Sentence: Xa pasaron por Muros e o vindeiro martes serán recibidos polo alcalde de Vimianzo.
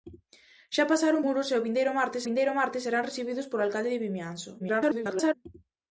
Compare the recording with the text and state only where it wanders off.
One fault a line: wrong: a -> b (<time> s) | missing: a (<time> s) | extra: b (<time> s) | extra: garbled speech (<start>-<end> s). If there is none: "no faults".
missing: por (1.2 s)
extra: vindeiro martes (2.3 s)
extra: garbled speech (4.6-5.3 s)